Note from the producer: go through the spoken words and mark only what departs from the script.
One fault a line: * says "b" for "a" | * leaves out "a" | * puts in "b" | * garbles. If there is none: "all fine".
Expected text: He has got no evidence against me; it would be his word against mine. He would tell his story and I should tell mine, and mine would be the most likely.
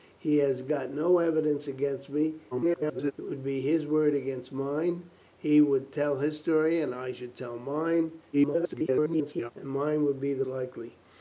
* garbles
* garbles
* leaves out "most"